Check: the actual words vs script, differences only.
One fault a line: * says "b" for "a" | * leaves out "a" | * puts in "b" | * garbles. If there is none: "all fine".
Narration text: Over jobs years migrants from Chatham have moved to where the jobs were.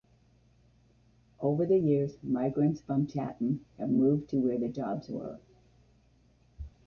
* says "the" for "jobs"